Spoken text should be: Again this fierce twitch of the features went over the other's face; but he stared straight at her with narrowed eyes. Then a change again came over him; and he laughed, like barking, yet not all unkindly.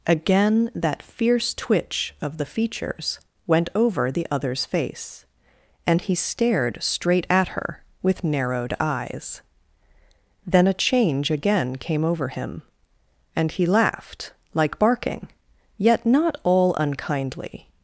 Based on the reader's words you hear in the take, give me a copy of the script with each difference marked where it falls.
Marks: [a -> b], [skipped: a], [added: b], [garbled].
Again [this -> that] fierce twitch of the features went over the other's face; [but -> and] he stared straight at her with narrowed eyes. Then a change again came over him; and he laughed, like barking, yet not all unkindly.